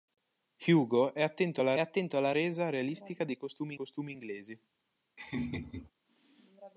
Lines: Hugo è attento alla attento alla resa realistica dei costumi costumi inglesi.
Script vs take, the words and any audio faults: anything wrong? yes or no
yes